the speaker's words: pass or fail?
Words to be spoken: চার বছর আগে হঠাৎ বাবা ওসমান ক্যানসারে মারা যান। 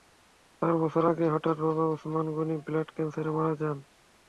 fail